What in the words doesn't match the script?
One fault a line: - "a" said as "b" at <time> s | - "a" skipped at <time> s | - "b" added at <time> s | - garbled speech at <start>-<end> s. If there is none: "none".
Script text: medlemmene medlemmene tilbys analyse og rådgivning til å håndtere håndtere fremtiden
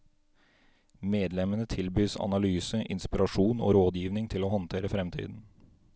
- "medlemmene" skipped at 1.6 s
- "inspirasjon" added at 3.0 s
- "håndtere" skipped at 4.9 s